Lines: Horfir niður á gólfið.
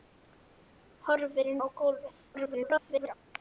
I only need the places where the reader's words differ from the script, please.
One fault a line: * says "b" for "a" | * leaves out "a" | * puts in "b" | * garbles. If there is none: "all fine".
* leaves out "niður"
* garbles